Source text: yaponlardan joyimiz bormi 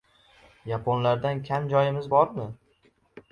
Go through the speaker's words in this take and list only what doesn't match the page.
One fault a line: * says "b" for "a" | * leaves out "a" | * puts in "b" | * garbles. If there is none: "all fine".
* puts in "kam"